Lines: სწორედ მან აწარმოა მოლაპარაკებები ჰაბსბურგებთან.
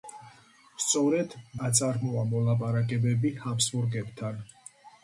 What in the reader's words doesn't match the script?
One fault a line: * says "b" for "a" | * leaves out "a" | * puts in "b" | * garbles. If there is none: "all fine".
* leaves out "მან"